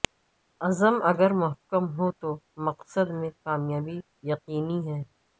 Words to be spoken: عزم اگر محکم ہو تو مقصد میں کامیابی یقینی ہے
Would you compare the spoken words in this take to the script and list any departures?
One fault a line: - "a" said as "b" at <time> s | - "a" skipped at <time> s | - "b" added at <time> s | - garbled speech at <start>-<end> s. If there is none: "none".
none